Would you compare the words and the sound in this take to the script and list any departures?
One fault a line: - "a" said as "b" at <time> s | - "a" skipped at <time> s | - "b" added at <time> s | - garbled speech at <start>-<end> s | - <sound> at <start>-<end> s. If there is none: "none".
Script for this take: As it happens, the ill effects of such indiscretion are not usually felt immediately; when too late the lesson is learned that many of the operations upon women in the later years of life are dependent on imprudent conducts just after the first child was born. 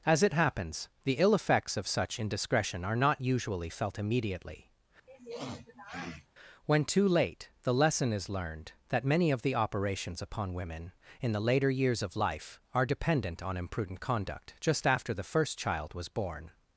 - sniff at 5.1-6.3 s
- "conducts" said as "conduct" at 14.0 s